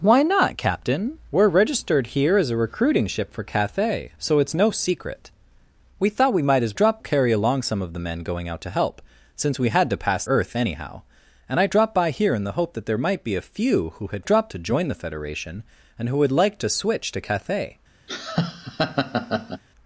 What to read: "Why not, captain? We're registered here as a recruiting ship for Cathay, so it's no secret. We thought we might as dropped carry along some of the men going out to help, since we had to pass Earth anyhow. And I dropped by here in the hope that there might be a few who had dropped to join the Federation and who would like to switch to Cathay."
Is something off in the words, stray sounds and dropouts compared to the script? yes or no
yes